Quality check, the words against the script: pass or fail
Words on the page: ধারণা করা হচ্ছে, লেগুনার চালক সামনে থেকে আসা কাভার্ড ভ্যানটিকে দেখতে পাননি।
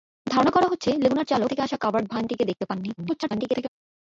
fail